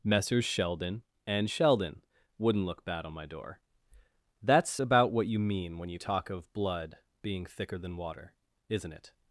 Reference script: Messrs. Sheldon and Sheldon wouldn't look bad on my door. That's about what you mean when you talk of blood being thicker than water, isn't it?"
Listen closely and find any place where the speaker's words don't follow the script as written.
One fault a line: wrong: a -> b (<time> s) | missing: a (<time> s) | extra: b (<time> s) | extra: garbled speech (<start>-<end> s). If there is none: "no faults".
no faults